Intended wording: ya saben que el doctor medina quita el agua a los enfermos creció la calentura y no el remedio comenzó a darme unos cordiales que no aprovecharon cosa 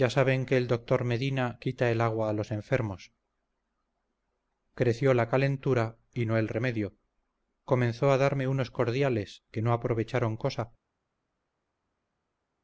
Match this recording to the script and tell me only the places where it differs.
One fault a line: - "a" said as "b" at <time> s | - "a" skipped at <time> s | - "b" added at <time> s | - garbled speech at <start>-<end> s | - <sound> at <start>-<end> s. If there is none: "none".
none